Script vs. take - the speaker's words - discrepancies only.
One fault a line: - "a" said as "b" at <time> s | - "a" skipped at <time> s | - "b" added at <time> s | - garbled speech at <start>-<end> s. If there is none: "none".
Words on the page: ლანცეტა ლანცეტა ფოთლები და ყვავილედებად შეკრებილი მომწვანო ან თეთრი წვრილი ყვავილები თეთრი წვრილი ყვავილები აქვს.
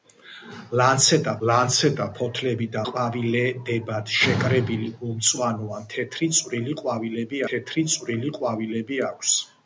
none